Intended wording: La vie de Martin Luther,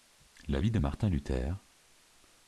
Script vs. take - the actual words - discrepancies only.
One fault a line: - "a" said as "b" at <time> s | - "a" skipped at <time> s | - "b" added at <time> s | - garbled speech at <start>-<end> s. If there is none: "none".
none